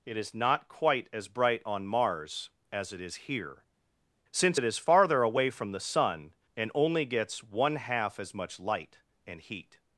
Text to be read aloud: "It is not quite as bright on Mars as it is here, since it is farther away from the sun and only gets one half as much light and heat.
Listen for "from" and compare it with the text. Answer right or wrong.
right